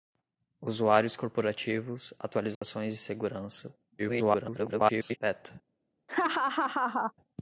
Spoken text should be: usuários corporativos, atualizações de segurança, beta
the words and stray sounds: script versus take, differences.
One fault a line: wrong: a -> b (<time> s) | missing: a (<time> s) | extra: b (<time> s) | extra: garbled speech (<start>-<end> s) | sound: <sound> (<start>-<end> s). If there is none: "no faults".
sound: dropout (2.5-2.6 s)
extra: garbled speech (4.0-5.2 s)
sound: laugh (6.1-7.1 s)